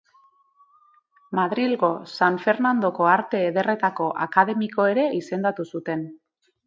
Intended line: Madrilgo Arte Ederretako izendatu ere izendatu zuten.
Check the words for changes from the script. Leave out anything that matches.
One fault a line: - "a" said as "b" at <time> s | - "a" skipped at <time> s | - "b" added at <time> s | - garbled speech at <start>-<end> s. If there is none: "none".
- "San Fernandoko" added at 2.1 s
- "izendatu" said as "akademiko" at 4.3 s